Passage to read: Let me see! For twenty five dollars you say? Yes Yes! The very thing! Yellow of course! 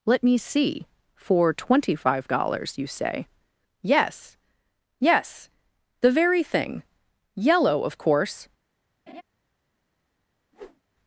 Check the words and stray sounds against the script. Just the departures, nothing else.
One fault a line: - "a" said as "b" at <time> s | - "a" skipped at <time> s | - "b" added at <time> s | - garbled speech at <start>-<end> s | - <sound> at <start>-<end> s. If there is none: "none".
- laugh at 9.1-9.2 s
- whoosh at 10.5-10.8 s